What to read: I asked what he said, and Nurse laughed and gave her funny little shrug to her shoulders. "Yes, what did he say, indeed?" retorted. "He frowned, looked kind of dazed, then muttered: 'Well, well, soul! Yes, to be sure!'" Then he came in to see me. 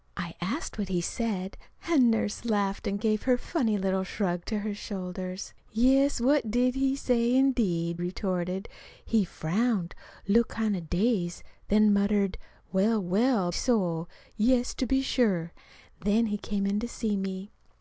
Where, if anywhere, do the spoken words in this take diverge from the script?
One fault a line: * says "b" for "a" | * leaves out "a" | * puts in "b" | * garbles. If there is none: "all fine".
all fine